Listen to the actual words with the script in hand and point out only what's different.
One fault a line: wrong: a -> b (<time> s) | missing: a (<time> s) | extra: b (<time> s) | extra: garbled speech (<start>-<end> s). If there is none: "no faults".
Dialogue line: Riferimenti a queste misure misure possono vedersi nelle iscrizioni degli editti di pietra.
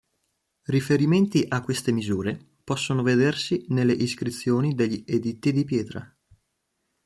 missing: misure (2.4 s)